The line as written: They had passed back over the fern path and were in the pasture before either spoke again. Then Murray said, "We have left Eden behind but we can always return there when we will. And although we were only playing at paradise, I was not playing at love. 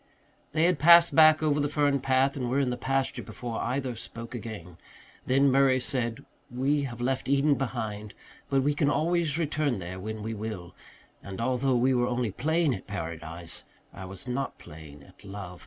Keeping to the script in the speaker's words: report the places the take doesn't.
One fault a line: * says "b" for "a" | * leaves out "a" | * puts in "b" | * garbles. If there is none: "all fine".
all fine